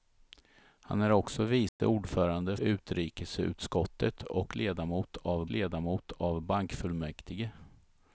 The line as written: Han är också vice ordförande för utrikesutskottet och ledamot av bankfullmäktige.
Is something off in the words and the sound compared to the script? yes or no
yes